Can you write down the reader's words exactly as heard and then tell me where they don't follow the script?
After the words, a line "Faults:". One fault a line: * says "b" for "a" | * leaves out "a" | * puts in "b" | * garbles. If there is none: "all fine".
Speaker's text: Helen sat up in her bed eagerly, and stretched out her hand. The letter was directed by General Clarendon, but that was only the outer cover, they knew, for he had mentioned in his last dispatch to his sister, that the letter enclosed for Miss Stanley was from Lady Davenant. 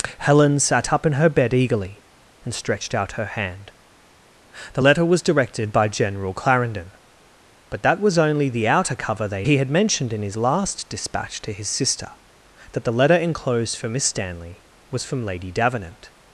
Helen sat up in her bed eagerly, and stretched out her hand. The letter was directed by General Clarendon, but that was only the outer cover, they he had mentioned in his last dispatch to his sister, that the letter enclosed for Miss Stanley was from Lady Davenant.
Faults:
* leaves out "knew for"